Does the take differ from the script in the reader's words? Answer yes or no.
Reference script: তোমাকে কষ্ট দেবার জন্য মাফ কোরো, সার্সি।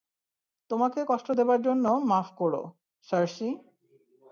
no